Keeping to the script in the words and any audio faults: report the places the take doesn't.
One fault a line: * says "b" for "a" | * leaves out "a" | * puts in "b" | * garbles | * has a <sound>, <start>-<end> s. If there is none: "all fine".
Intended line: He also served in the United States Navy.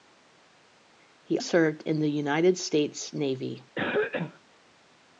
* leaves out "also"
* has a cough, 3.8-4.4 s